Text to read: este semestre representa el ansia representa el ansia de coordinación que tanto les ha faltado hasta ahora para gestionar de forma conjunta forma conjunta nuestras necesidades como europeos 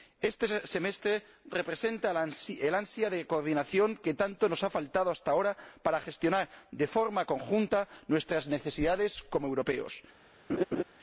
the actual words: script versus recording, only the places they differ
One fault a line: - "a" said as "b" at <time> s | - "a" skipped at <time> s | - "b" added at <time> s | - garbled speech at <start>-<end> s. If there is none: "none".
- "representa el ansia" skipped at 3.1 s
- "les" said as "nos" at 4.5 s
- "forma conjunta" skipped at 7.9 s